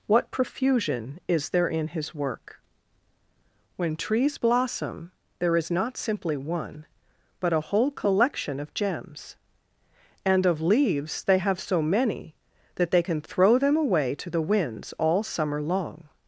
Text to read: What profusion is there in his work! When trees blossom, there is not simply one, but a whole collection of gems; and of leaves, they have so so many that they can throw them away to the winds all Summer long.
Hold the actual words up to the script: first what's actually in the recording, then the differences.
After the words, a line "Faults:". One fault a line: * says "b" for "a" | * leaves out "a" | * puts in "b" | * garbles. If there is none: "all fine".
What profusion is there in his work! When trees blossom, there is not simply one, but a whole collection of gems; and of leaves, they have so many that they can throw them away to the winds all Summer long.
Faults:
* leaves out "so"